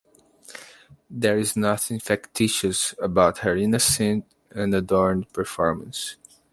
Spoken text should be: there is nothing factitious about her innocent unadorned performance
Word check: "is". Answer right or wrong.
right